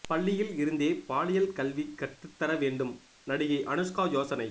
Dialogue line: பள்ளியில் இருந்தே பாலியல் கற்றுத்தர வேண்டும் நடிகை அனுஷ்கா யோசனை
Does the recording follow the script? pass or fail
fail